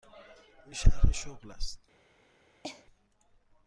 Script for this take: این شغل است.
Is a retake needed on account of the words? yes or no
yes